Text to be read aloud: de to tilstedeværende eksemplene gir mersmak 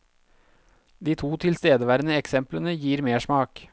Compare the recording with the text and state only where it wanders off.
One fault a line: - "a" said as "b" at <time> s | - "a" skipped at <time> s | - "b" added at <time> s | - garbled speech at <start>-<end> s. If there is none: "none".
none